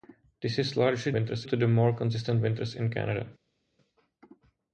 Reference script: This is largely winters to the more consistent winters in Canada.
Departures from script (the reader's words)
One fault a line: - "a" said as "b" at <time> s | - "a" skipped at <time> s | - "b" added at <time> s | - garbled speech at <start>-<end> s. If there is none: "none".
none